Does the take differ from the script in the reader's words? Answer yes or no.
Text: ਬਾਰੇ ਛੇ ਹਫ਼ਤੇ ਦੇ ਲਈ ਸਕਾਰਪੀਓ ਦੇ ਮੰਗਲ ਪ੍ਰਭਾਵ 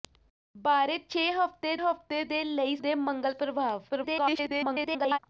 yes